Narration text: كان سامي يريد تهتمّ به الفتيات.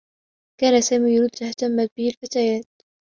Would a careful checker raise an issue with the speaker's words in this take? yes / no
no